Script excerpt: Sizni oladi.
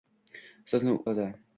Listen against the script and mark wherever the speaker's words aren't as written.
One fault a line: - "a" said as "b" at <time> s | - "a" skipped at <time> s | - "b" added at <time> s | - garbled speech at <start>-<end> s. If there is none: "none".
none